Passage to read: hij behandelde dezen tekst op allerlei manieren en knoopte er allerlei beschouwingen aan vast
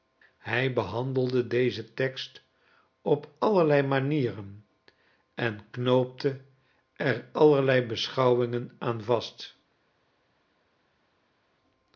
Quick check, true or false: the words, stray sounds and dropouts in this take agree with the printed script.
true